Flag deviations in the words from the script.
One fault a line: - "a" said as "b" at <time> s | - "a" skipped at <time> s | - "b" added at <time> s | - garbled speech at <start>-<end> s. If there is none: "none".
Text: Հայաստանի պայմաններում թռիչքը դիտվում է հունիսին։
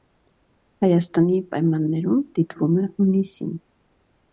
- "թռիչքը" skipped at 2.2 s